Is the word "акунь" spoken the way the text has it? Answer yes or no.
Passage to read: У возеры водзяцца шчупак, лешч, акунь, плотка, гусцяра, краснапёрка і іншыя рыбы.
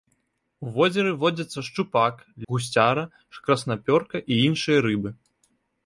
no